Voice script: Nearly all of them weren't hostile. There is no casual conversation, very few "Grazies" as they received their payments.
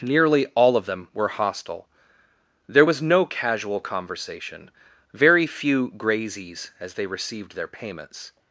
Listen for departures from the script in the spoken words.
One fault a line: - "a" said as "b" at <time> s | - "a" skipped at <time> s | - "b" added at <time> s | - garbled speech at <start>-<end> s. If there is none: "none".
- "weren't" said as "were" at 1.1 s
- "is" said as "was" at 2.8 s